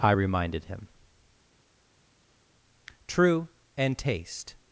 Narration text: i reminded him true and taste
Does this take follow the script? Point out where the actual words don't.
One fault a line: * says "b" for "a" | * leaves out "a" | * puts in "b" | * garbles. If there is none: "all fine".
all fine